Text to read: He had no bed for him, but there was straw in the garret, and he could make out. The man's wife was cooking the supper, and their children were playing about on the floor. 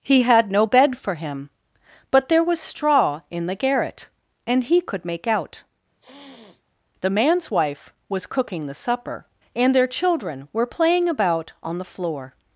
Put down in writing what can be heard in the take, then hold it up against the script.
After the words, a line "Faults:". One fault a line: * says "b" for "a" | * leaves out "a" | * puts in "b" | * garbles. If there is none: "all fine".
He had no bed for him, but there was straw in the garret, and he could make out. The man's wife was cooking the supper, and their children were playing about on the floor.
Faults:
all fine